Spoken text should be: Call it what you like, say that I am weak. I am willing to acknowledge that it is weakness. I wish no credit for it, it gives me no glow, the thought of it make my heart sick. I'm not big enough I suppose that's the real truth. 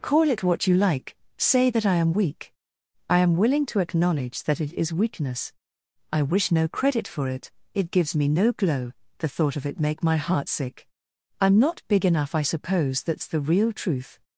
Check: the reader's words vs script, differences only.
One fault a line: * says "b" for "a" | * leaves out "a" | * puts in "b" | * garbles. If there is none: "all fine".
all fine